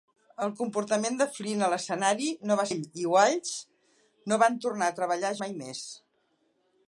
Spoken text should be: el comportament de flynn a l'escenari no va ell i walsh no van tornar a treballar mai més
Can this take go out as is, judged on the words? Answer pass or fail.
pass